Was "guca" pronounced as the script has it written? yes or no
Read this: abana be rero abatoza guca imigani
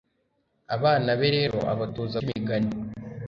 no